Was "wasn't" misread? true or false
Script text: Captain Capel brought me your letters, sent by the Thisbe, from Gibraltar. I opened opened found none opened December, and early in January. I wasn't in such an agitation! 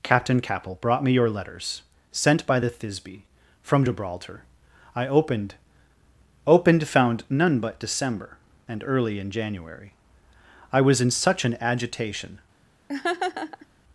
true